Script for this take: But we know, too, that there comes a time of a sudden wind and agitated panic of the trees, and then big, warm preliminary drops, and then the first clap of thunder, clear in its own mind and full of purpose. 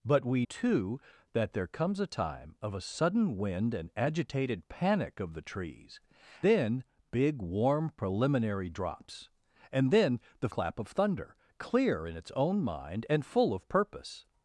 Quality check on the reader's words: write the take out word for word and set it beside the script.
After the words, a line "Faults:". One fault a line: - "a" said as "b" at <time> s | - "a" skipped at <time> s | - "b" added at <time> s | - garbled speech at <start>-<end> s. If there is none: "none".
But we too, that there comes a time of a sudden wind and agitated panic of the trees, then big, warm preliminary drops, and then the clap of thunder, clear in its own mind and full of purpose.
Faults:
- "know" skipped at 0.5 s
- "and" skipped at 6.0 s
- "first" skipped at 10.5 s